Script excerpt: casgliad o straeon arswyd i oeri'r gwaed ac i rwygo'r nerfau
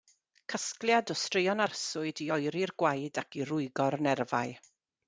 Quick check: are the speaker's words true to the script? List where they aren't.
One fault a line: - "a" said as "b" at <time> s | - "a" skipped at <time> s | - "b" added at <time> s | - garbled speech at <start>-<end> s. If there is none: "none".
none